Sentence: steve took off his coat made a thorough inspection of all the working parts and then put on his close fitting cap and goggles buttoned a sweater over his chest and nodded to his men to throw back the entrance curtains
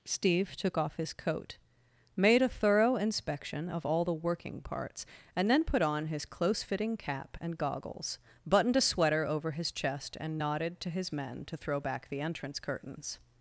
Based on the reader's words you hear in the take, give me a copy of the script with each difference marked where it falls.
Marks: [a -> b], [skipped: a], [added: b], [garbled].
steve took off his coat made a thorough inspection of all the working parts and then put on his close fitting cap and goggles buttoned a sweater over his chest and nodded to his men to throw back the entrance curtains